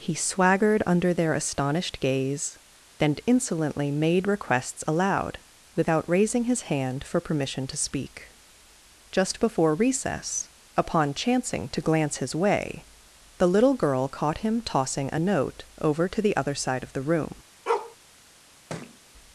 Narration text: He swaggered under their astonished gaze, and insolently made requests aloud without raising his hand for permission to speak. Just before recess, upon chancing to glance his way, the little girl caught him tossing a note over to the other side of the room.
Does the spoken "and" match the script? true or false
false